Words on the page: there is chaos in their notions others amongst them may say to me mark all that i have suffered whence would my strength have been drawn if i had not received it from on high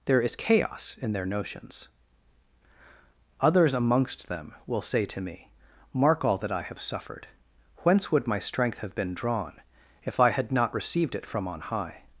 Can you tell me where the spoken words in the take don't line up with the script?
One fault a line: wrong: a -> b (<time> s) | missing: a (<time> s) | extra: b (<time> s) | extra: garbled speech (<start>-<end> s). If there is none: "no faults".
wrong: may -> will (4.7 s)